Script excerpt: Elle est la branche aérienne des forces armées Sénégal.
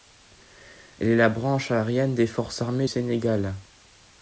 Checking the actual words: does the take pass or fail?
pass